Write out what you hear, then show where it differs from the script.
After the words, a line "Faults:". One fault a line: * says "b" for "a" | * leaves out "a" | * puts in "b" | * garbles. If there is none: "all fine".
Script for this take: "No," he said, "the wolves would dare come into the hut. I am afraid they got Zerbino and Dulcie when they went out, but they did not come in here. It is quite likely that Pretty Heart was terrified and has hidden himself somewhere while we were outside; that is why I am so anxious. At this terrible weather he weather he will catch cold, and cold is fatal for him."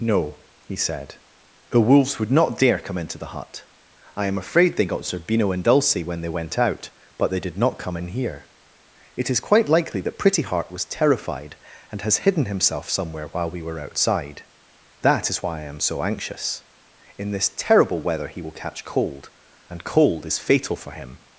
"No," he said, "the wolves would not dare come into the hut. I am afraid they got Zerbino and Dulcie when they went out, but they did not come in here. It is quite likely that Pretty Heart was terrified and has hidden himself somewhere while we were outside; that is why I am so anxious. In this terrible weather he will catch cold, and cold is fatal for him."
Faults:
* puts in "not"
* says "In" for "At"
* leaves out "weather he"